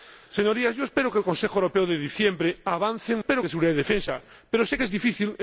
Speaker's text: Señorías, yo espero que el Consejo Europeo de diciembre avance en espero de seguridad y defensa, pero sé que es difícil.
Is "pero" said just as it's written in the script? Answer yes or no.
yes